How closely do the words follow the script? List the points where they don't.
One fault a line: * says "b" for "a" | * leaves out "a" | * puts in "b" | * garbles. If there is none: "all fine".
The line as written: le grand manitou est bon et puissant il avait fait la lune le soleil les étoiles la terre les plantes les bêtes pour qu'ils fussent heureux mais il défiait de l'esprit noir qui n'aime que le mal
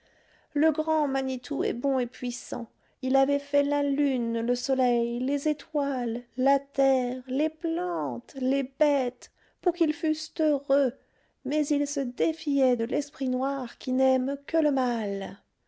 * puts in "se"